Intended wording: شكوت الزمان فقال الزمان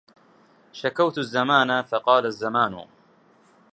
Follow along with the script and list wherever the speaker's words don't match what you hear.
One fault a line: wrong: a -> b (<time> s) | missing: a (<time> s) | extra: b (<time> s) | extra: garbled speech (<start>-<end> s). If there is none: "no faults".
no faults